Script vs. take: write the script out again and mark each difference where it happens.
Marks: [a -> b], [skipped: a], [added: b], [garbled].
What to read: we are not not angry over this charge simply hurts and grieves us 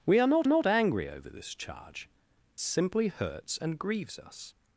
we are not not angry over this charge simply hurts and grieves us